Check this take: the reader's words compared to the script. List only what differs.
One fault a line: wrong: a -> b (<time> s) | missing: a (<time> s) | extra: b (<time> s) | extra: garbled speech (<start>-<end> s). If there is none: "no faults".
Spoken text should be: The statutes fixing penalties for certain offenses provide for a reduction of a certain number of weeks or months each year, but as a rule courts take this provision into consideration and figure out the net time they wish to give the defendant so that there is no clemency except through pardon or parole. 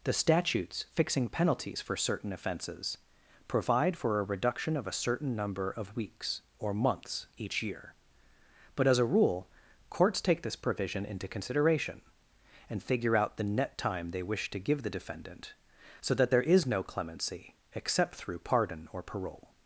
no faults